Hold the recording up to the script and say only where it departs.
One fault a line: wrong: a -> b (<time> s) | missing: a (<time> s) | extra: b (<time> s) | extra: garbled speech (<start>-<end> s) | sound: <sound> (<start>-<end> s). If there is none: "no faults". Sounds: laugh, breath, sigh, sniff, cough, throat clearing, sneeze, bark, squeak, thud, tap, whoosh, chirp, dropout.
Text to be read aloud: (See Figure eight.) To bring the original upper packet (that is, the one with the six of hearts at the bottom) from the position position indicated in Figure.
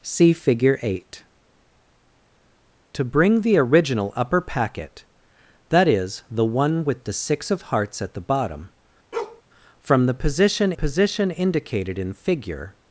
sound: bark (9.1-9.4 s)